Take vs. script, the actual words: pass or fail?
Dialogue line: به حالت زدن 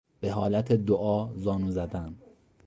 fail